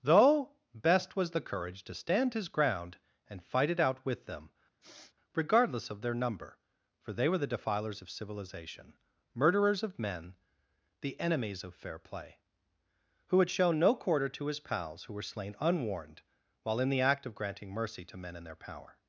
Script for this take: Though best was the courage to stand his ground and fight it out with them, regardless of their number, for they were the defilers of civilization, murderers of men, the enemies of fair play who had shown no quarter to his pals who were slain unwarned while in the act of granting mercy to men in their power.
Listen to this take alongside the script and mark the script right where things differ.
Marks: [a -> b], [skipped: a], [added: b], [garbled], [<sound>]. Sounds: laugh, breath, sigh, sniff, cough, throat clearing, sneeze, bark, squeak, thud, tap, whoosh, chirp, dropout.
Though best was the courage to stand his ground and fight it out with them, [sniff] regardless of their number, for they were the defilers of civilization, murderers of men, the enemies of fair play who had shown no quarter to his pals who were slain unwarned while in the act of granting mercy to men in their power.